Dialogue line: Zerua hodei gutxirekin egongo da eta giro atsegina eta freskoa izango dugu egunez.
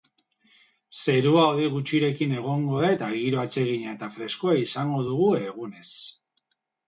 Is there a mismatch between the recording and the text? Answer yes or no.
no